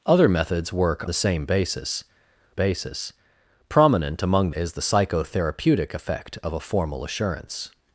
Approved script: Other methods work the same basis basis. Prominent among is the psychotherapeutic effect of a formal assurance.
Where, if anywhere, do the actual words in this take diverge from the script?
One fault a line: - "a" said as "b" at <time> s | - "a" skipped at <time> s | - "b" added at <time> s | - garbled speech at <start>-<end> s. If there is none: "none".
none